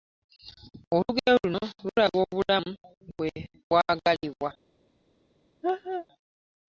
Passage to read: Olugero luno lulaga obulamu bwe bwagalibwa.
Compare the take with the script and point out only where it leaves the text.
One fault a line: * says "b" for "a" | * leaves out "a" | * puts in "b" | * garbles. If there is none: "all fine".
all fine